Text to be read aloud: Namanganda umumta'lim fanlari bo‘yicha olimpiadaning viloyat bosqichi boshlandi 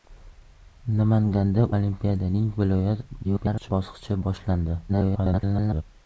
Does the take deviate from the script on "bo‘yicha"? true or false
true